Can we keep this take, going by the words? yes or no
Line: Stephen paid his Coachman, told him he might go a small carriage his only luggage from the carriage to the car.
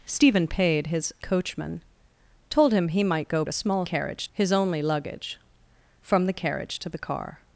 yes